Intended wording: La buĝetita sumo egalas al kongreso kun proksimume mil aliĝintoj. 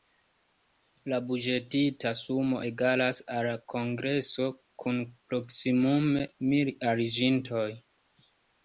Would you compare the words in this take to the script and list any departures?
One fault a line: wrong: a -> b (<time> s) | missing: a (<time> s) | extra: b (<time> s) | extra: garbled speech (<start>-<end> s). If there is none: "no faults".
no faults